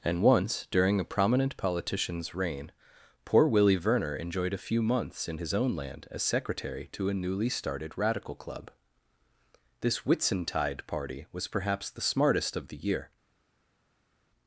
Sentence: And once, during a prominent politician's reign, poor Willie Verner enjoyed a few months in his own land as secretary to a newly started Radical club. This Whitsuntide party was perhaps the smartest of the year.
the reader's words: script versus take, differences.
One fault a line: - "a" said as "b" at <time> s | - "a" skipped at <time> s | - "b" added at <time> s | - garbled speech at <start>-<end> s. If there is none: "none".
none